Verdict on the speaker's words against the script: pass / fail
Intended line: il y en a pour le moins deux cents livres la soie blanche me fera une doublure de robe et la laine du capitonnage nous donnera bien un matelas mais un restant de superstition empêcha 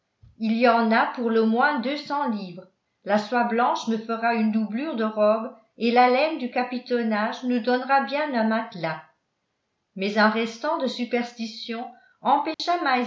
pass